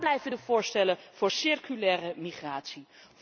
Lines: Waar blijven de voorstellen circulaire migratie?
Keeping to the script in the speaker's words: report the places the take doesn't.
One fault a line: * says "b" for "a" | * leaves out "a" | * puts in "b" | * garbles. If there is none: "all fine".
* puts in "voor"